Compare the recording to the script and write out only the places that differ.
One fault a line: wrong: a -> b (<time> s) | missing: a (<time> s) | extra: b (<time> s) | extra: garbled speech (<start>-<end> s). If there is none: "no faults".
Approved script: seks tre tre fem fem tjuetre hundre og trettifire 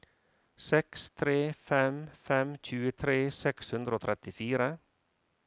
missing: tre (1.4 s)
extra: seks (3.4 s)